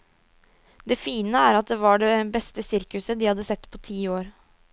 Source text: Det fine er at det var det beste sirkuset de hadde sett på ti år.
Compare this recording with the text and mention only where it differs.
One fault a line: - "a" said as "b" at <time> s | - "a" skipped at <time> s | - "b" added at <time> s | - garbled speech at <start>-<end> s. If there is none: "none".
none